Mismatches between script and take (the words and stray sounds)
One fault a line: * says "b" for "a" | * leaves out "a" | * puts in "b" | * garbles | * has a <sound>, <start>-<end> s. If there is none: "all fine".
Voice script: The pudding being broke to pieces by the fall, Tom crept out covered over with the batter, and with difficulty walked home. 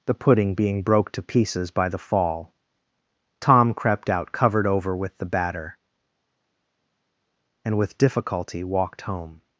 all fine